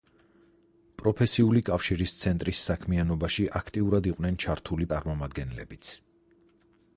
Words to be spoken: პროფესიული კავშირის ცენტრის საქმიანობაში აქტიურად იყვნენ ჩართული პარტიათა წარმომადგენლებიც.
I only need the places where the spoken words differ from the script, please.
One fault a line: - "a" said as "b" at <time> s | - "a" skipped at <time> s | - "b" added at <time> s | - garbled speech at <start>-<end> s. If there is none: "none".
- "პარტიათა" skipped at 4.9 s